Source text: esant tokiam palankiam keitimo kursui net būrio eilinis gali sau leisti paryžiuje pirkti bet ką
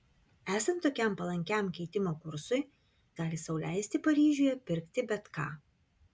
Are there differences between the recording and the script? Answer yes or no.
yes